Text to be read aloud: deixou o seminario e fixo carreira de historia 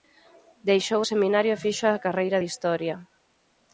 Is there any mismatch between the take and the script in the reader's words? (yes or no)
yes